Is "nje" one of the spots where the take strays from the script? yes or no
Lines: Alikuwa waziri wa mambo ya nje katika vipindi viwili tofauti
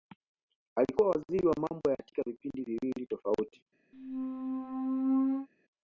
yes